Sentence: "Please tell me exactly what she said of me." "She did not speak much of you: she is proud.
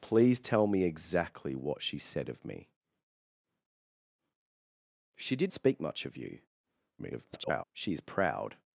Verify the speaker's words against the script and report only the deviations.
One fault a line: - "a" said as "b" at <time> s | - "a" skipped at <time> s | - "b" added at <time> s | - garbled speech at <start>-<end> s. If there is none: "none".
- "not" skipped at 5.5 s
- garbled speech at 7.0-7.6 s